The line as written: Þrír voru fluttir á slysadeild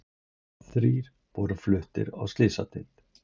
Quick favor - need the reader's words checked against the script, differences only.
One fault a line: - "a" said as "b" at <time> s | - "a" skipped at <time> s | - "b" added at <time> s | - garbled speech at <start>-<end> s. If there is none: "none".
none